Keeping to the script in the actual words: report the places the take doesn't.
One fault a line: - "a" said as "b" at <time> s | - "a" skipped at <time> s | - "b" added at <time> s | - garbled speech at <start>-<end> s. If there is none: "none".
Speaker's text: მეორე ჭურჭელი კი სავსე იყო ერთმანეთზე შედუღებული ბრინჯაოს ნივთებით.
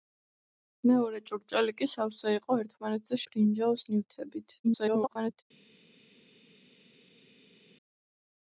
- "შედუღებული" skipped at 3.2 s
- garbled speech at 4.6-5.4 s